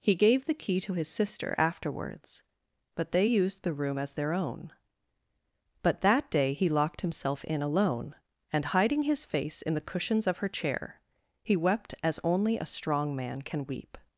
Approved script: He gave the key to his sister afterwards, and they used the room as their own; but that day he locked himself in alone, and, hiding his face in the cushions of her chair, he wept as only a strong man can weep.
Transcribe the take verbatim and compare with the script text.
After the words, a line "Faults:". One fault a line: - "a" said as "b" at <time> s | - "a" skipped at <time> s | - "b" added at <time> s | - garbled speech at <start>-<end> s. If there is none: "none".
He gave the key to his sister afterwards, but they used the room as their own; but that day he locked himself in alone, and, hiding his face in the cushions of her chair, he wept as only a strong man can weep.
Faults:
- "and" said as "but" at 3.0 s